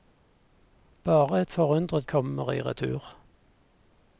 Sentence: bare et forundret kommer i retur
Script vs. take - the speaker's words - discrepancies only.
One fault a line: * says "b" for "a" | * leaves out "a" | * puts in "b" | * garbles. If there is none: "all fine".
all fine